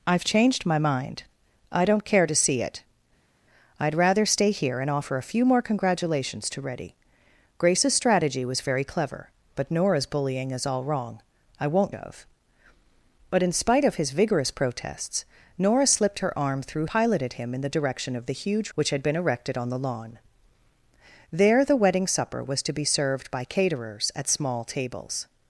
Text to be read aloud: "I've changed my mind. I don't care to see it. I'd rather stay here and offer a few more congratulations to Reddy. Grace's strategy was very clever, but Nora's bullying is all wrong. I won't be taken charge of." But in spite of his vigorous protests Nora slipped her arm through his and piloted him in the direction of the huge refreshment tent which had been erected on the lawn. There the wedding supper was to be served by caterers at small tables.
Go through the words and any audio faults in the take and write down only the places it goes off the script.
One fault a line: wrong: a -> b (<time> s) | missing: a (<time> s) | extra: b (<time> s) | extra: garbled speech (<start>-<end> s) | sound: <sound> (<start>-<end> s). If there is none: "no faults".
missing: be taken charge (11.9 s)
missing: his and (16.9 s)
missing: refreshment tent (18.7 s)